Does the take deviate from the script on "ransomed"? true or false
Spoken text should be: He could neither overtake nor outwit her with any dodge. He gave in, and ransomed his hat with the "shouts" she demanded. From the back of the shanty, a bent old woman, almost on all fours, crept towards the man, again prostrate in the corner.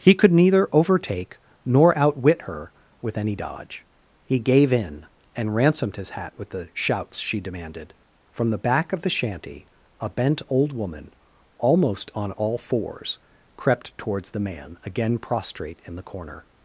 false